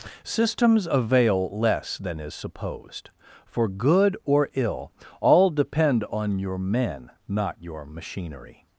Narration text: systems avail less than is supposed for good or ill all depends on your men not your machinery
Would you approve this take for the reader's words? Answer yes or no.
no